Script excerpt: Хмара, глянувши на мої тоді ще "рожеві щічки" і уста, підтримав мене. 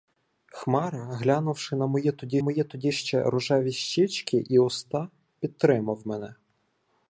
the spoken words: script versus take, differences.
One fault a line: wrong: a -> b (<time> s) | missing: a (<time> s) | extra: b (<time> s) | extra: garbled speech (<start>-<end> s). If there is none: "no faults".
extra: мої тоді (2.4 s)